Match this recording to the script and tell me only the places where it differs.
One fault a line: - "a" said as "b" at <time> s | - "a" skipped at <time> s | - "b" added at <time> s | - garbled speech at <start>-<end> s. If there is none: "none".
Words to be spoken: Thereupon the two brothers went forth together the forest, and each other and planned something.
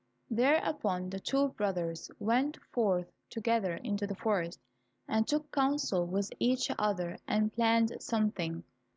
- "into" added at 3.7 s
- "took counsel with" added at 5.3 s